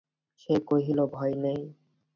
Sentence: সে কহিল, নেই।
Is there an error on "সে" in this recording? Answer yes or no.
no